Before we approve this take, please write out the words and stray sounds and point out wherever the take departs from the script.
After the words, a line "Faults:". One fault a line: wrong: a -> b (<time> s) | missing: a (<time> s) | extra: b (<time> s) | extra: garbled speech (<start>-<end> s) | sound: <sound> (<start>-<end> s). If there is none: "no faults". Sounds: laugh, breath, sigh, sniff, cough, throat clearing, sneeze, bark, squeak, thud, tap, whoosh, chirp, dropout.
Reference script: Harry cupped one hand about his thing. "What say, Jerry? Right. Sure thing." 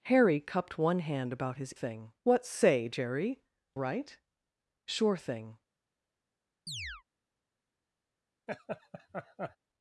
Harry cupped one hand about his thing. "What say, Jerry? Right. Sure thing."
Faults:
sound: chirp (6.7-7.0 s)
sound: laugh (8.5-9.6 s)